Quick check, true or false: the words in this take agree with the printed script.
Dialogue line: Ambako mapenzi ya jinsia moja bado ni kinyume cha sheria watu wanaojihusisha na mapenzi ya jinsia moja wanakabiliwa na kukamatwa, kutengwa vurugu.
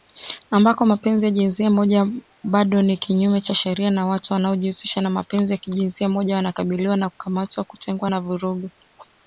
false